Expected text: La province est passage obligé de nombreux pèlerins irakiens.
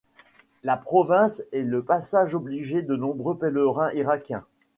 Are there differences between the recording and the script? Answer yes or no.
yes